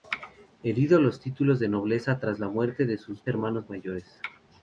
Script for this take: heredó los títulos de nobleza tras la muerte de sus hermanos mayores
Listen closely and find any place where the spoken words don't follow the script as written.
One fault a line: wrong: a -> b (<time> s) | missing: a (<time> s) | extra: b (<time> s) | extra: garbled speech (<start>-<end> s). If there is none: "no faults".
no faults